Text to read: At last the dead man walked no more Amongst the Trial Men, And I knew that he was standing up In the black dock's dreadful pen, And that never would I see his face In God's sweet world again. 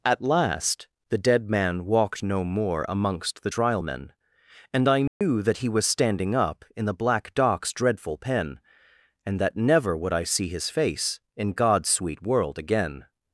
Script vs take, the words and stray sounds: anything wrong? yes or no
yes